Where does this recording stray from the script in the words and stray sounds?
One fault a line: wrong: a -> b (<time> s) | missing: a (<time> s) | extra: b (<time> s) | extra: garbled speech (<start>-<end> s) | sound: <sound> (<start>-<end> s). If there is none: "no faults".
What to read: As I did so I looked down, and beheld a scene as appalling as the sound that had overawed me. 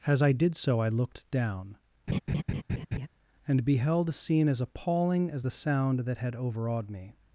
sound: laugh (2.1-3.1 s)